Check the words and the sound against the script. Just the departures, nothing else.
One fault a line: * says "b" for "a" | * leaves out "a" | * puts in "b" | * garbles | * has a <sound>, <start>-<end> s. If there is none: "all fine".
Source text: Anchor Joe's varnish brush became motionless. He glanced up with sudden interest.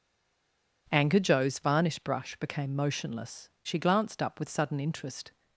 * says "She" for "He"